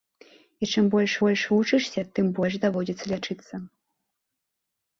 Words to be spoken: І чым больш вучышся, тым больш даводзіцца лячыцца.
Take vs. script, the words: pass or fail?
fail